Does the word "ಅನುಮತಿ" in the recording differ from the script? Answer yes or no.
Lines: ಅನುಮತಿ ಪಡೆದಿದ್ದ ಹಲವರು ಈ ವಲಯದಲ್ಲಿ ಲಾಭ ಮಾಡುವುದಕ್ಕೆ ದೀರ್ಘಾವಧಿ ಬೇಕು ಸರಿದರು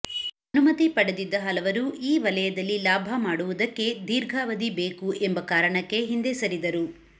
no